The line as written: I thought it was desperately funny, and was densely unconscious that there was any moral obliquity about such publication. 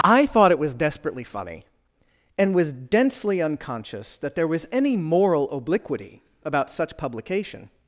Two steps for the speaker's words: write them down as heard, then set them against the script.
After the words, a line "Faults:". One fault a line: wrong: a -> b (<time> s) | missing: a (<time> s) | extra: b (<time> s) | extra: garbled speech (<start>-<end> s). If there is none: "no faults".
I thought it was desperately funny, and was densely unconscious that there was any moral obliquity about such publication.
Faults:
no faults